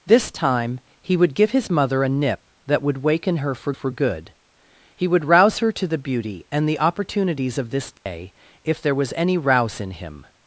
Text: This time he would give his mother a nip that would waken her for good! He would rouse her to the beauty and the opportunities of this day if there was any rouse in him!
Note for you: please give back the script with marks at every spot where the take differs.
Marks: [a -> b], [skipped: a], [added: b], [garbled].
This time he would give his mother a nip that would waken her for [added: for] good! He would rouse her to the beauty and the opportunities of this day if there was any rouse in him!